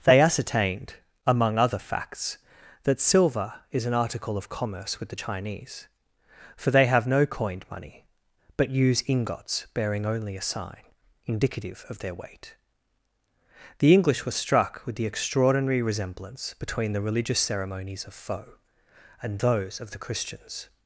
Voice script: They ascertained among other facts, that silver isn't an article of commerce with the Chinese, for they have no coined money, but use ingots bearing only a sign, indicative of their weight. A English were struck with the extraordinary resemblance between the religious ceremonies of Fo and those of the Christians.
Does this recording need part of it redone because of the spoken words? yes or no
yes